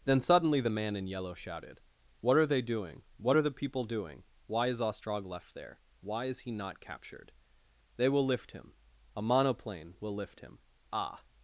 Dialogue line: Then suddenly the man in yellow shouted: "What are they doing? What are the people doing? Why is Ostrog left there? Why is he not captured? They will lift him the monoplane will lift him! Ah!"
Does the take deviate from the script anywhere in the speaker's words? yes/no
yes